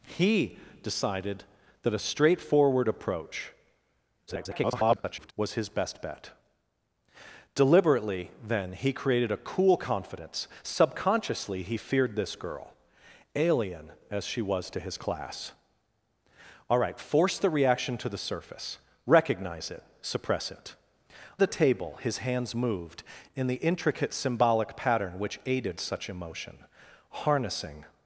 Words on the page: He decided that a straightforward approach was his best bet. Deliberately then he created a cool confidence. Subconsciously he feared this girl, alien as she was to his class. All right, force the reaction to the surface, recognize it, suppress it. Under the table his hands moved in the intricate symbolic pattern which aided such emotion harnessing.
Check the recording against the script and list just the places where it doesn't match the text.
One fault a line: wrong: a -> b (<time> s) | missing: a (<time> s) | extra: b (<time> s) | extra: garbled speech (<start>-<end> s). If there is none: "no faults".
extra: garbled speech (4.3-5.3 s)
missing: Under (20.7 s)